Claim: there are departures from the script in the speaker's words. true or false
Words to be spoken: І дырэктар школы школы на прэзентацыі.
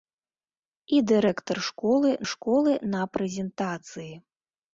false